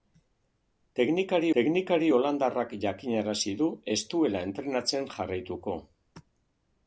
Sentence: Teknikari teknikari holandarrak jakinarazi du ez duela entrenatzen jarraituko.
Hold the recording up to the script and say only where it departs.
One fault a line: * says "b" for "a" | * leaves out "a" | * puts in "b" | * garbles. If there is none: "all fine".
all fine